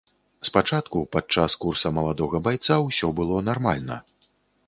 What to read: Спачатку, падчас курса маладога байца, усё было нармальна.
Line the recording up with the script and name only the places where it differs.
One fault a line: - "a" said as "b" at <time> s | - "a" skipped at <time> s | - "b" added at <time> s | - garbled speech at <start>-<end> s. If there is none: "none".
none